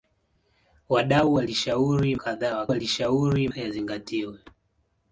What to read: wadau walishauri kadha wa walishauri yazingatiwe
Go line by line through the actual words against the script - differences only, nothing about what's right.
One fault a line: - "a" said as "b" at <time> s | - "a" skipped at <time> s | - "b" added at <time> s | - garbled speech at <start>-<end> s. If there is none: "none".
none